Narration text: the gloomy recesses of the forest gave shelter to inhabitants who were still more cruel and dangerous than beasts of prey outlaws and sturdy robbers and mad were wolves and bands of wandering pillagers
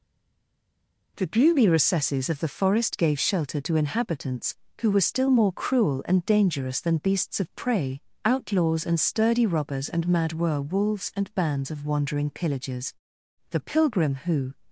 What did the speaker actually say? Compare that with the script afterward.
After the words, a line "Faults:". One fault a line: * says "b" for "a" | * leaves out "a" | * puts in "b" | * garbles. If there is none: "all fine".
the gloomy recesses of the forest gave shelter to inhabitants who were still more cruel and dangerous than beasts of prey outlaws and sturdy robbers and mad were wolves and bands of wandering pillagers the pilgrim who
Faults:
* puts in "the pilgrim who"